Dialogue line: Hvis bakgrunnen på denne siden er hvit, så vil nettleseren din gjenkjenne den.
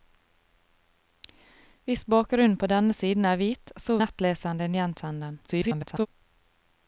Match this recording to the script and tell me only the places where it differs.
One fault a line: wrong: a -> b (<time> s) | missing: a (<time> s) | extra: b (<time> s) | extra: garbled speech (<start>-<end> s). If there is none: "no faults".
missing: vil (4.0 s)
extra: garbled speech (5.5-6.1 s)